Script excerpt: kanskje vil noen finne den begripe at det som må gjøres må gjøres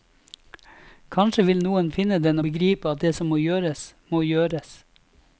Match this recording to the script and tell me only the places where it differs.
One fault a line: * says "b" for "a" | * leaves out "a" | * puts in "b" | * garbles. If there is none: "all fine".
all fine